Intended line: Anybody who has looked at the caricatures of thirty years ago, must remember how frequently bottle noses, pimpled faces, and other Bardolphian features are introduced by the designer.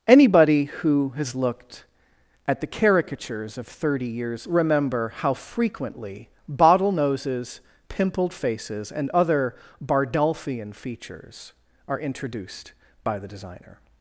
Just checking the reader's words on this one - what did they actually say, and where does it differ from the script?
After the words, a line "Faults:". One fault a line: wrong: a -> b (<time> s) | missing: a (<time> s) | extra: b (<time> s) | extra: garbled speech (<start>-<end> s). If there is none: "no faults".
Anybody who has looked at the caricatures of thirty years remember how frequently bottle noses, pimpled faces, and other Bardolphian features are introduced by the designer.
Faults:
missing: ago must (4.5 s)